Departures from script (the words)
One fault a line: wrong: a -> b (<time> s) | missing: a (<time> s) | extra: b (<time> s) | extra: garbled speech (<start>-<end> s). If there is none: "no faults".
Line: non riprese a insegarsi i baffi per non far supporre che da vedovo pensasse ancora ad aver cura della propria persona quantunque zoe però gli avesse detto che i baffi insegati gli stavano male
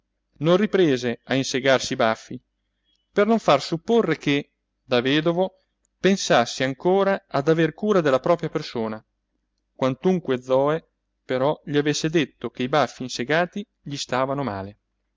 no faults